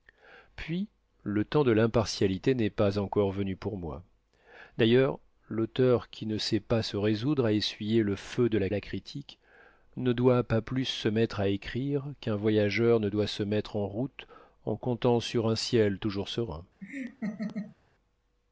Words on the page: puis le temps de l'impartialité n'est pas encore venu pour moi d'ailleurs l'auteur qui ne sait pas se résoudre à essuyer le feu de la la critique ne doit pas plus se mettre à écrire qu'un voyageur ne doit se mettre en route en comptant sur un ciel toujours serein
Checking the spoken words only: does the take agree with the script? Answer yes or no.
yes